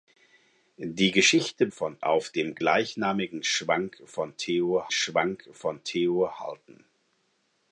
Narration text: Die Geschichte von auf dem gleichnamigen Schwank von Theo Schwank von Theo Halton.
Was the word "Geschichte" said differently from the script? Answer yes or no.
no